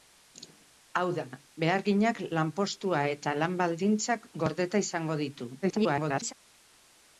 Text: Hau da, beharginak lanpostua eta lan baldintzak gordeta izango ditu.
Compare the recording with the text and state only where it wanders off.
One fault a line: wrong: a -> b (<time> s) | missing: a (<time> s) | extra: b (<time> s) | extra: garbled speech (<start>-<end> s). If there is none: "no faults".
extra: garbled speech (5.6-6.3 s)